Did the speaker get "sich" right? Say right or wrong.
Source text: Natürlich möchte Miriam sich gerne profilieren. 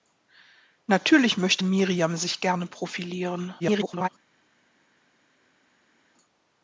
right